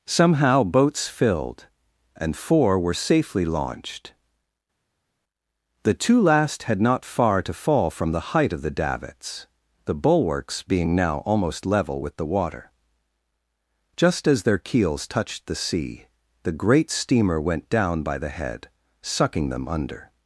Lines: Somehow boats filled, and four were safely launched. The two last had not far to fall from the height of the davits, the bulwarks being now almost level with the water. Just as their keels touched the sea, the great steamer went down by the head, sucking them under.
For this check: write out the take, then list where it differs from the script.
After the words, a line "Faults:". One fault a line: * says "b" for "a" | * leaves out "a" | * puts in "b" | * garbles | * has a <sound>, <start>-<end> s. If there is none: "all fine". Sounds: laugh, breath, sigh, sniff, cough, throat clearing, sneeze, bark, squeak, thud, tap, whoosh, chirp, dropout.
Somehow boats filled, and four were safely launched. The two last had not far to fall from the height of the davits, the bulwarks being now almost level with the water. Just as their keels touched the sea, the great steamer went down by the head, sucking them under.
Faults:
all fine